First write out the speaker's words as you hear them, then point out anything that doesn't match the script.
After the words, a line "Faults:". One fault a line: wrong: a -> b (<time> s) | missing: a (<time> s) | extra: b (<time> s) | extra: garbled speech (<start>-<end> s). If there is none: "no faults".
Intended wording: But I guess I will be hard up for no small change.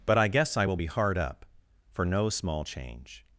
But I guess I will be hard up for no small change.
Faults:
no faults